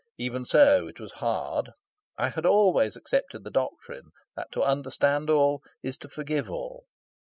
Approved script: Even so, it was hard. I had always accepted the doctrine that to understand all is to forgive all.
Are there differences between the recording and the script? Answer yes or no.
no